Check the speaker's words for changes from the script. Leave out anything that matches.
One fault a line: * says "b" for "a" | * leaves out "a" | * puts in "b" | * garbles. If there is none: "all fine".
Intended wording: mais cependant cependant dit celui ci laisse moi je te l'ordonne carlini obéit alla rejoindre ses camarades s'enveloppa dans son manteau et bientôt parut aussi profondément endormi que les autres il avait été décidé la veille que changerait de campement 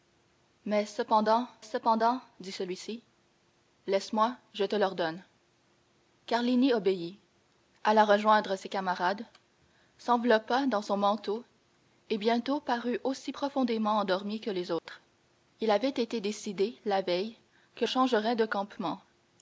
all fine